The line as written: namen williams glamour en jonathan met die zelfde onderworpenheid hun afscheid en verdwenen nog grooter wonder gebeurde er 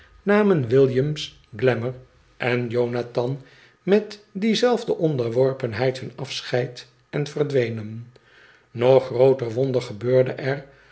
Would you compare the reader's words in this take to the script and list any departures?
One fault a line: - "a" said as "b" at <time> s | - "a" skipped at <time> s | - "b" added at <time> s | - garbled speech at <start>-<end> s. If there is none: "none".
none